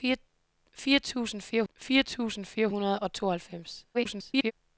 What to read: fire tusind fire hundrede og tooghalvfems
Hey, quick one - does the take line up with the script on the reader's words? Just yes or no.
no